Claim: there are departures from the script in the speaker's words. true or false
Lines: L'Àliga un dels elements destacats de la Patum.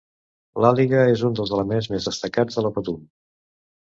true